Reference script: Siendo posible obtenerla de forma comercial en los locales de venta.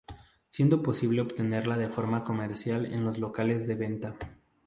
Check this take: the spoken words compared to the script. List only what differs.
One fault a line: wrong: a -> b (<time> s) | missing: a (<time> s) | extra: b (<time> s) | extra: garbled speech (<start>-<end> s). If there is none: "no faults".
no faults